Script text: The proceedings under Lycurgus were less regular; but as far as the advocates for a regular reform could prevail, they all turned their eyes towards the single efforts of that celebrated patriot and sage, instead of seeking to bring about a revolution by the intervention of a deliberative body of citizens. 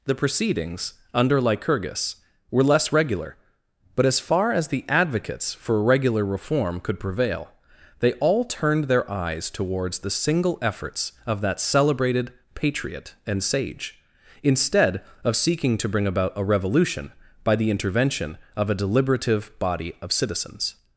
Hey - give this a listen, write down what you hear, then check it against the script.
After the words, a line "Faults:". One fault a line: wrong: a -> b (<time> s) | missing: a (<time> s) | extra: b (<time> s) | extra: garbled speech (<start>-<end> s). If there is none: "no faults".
The proceedings under Lycurgus were less regular; but as far as the advocates for regular reform could prevail, they all turned their eyes towards the single efforts of that celebrated patriot and sage, instead of seeking to bring about a revolution by the intervention of a deliberative body of citizens.
Faults:
missing: a (5.8 s)